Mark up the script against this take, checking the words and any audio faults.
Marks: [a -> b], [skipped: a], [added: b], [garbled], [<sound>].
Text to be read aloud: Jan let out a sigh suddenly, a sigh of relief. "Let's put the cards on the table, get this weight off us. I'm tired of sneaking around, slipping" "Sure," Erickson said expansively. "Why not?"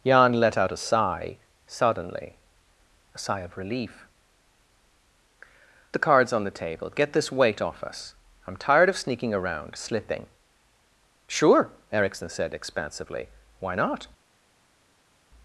Jan let out a sigh suddenly, a sigh of relief. [skipped: "Let's put] the cards on the table, get this weight off us. I'm tired of sneaking around, slipping" "Sure," Erickson said expansively. "Why not?"